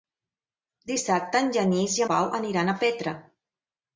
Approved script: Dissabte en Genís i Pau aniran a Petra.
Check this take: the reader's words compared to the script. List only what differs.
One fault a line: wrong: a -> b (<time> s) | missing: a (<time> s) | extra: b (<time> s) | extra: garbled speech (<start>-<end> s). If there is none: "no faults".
no faults